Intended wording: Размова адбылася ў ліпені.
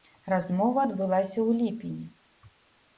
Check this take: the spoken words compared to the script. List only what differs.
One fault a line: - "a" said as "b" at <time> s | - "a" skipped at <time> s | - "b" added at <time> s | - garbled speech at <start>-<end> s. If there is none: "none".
none